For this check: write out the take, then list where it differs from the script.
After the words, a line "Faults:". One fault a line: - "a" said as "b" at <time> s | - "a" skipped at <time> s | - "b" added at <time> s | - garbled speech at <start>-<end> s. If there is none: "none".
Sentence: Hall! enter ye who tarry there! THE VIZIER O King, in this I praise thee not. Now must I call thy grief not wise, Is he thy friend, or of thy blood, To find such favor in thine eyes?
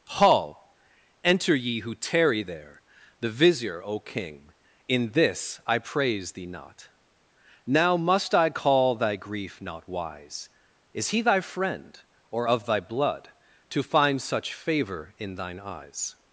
Hall! enter ye who tarry there! THE VIZIER O King, in this I praise thee not. Now must I call thy grief not wise, Is he thy friend, or of thy blood, To find such favor in thine eyes?
Faults:
none